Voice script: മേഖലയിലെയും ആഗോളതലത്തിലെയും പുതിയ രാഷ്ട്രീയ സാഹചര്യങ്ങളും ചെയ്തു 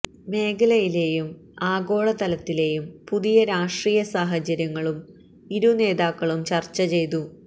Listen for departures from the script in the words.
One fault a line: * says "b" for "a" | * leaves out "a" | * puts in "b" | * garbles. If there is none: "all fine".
* puts in "ഇരു നേതാക്കളും ചര്ച്ച"